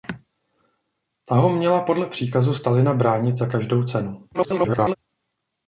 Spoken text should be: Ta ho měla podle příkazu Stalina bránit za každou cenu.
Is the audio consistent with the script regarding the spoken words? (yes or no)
no